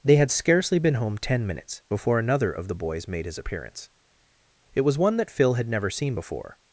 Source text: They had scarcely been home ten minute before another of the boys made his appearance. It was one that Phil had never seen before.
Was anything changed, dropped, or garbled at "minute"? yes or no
yes